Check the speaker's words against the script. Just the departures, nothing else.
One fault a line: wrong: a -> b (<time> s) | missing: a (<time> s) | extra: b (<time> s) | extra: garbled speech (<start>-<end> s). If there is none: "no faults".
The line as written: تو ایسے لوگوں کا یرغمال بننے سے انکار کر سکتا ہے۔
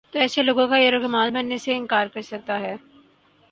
no faults